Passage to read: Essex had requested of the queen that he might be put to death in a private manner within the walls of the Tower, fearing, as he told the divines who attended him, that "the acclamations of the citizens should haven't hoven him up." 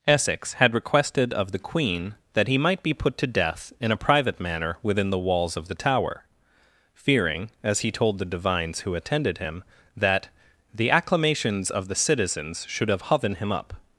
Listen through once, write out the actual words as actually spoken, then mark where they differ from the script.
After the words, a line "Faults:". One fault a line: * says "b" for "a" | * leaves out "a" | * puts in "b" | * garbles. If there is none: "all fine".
Essex had requested of the queen that he might be put to death in a private manner within the walls of the Tower, fearing, as he told the divines who attended him, that "the acclamations of the citizens should have hoven him up."
Faults:
* says "have" for "haven't"